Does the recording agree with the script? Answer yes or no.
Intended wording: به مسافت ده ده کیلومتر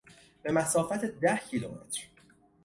no